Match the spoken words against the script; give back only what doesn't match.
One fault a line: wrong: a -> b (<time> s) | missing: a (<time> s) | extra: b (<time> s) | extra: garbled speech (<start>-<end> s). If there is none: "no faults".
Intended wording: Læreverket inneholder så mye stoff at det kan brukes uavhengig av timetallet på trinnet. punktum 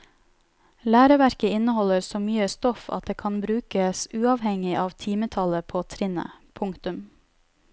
no faults